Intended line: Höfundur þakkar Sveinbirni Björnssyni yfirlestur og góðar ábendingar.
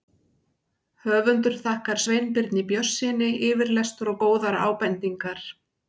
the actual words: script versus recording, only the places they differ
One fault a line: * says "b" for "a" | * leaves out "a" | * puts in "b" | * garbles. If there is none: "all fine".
all fine